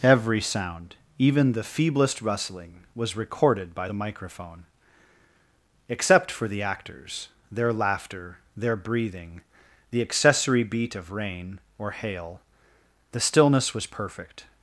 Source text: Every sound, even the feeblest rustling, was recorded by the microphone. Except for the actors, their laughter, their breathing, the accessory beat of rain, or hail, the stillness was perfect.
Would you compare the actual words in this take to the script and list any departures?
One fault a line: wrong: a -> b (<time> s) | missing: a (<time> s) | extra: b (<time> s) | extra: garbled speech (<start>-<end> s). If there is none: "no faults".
no faults